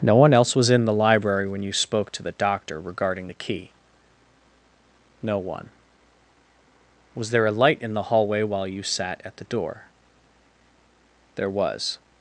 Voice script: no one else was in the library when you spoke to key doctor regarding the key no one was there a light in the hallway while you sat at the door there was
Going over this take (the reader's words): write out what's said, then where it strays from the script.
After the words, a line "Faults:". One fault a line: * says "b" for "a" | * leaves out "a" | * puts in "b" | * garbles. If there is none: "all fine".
no one else was in the library when you spoke to the doctor regarding the key no one was there a light in the hallway while you sat at the door there was
Faults:
* says "the" for "key"